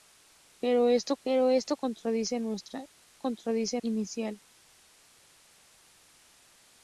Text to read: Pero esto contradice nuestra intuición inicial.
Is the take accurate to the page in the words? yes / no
no